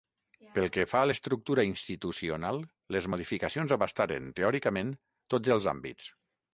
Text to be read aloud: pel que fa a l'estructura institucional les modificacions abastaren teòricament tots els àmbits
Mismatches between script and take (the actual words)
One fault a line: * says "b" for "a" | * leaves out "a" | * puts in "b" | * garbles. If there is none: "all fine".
all fine